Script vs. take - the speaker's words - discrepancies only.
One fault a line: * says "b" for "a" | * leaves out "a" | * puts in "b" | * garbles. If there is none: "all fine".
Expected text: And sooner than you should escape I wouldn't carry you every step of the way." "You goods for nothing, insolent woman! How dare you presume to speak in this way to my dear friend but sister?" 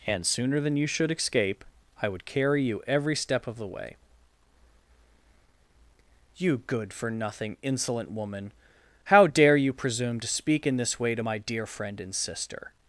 * says "would" for "wouldn't"
* says "good" for "goods"
* says "and" for "but"